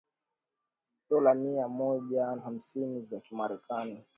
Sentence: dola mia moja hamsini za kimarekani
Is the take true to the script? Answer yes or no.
yes